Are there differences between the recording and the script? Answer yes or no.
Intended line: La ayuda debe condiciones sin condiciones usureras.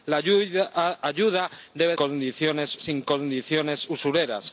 no